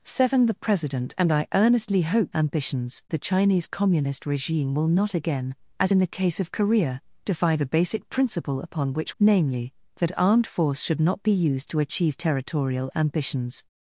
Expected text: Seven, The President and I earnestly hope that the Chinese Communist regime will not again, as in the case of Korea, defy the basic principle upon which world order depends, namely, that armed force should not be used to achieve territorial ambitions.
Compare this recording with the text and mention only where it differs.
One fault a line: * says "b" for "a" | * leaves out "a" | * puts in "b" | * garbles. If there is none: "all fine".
* says "ambitions" for "that"
* leaves out "world order depends"